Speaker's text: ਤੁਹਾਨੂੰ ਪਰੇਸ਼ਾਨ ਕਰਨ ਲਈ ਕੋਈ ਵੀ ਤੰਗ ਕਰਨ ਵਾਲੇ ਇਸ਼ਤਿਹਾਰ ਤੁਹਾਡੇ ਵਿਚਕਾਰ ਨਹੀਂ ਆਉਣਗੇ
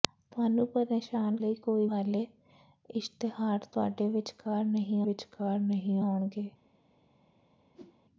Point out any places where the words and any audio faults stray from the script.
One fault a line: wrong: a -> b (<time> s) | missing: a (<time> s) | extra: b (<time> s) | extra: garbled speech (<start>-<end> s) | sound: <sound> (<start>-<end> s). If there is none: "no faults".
missing: ਕਰਨ (1.4 s)
missing: ਵੀ ਤੰਗ ਕਰਨ (1.9 s)
extra: ਵਿਚਕਾਰ ਨਹੀਂ (5.0 s)
sound: whoosh (7.7-8.0 s)